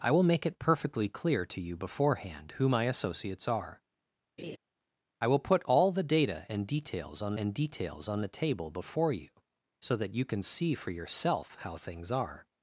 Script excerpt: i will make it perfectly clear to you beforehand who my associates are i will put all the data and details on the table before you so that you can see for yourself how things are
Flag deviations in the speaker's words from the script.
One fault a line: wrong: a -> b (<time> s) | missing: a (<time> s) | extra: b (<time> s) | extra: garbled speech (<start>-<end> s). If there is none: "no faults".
extra: and details on (7.4 s)